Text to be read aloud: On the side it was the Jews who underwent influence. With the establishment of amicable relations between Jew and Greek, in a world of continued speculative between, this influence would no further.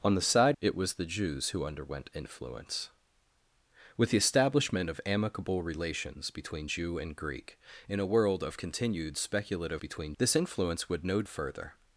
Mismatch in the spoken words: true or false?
false